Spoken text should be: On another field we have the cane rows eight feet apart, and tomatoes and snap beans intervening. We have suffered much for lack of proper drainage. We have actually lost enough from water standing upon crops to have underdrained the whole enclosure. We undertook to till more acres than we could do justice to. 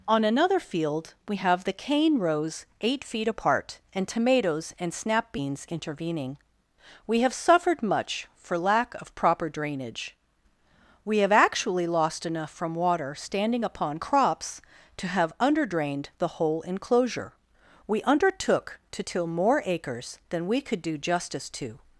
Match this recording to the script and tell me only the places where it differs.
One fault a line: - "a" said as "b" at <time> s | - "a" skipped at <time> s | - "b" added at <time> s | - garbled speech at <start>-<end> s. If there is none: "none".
none